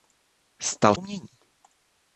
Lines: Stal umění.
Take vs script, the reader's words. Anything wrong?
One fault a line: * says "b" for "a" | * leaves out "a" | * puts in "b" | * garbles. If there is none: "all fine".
all fine